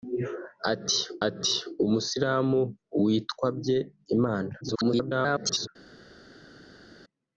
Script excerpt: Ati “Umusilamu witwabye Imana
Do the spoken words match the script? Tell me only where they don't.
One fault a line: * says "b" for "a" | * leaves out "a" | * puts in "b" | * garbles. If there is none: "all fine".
* puts in "ati"
* garbles